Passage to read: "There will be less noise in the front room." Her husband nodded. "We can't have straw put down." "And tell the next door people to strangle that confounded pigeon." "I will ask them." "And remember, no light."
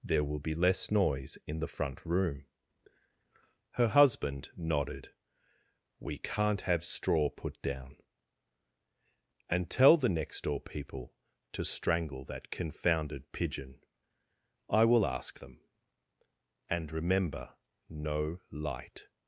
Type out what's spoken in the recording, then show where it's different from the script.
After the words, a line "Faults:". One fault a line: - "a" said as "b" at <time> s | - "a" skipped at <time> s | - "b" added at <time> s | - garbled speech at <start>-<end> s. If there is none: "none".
"There will be less noise in the front room." Her husband nodded. "We can't have straw put down." "And tell the next door people to strangle that confounded pigeon." "I will ask them." "And remember, no light."
Faults:
none